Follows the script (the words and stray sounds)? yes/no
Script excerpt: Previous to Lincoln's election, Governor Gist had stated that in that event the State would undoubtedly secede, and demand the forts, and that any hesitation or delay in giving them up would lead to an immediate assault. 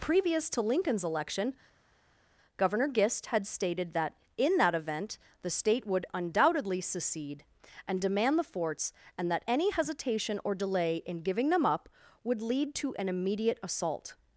yes